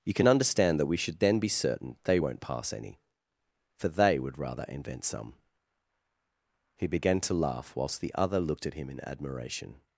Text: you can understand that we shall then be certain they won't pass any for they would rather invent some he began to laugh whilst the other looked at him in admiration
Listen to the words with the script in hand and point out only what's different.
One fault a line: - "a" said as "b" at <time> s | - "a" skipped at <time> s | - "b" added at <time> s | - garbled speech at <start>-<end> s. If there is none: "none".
- "shall" said as "should" at 1.0 s